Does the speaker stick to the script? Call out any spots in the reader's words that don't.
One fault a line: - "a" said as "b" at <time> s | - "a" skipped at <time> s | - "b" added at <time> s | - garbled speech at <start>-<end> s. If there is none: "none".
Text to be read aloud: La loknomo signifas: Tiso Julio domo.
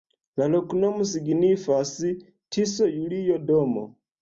none